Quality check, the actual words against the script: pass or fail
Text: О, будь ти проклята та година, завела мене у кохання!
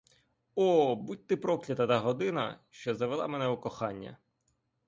fail